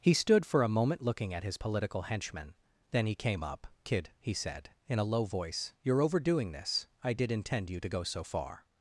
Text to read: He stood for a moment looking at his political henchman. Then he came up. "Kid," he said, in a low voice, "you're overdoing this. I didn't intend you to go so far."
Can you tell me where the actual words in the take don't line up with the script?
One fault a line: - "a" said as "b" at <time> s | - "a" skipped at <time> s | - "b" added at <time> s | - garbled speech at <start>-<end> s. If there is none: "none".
- "didn't" said as "did" at 7.1 s